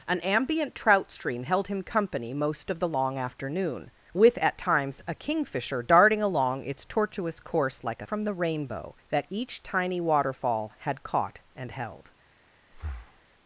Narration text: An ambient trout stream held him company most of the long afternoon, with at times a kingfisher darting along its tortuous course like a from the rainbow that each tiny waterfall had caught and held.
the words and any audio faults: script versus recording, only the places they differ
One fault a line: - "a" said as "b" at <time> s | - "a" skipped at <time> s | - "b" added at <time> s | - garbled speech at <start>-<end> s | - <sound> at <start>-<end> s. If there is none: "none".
- breath at 12.7-13.2 s